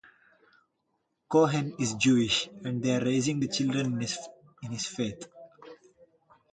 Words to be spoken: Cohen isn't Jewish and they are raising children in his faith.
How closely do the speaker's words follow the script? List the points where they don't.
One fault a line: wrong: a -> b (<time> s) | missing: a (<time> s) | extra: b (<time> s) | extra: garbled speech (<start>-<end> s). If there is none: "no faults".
wrong: isn't -> is (1.8 s)
extra: the (3.4 s)